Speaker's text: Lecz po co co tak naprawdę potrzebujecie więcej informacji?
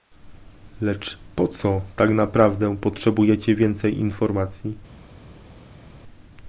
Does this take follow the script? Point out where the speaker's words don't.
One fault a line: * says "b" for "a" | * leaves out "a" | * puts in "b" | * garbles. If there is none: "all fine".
* leaves out "co"